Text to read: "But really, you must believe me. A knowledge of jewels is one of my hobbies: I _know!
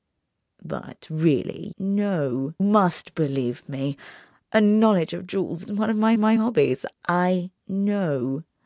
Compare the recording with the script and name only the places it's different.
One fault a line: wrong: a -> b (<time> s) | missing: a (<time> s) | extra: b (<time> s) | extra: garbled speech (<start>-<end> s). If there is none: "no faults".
wrong: you -> know (1.8 s)
missing: is (5.6 s)
extra: my (6.2 s)